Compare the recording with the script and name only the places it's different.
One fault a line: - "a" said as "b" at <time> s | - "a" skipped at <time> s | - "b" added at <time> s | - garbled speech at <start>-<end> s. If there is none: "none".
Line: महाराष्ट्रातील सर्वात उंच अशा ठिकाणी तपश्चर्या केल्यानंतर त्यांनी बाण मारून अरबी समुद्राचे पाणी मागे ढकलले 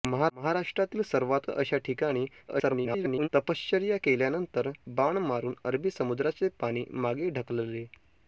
- "उंच" skipped at 1.4 s
- garbled speech at 2.5-3.3 s
- "त्यांनी" skipped at 4.7 s